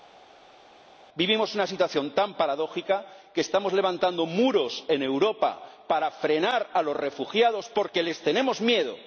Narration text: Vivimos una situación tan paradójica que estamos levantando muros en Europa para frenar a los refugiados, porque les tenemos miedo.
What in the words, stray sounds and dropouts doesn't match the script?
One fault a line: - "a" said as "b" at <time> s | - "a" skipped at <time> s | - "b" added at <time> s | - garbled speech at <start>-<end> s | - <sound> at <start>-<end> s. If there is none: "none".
none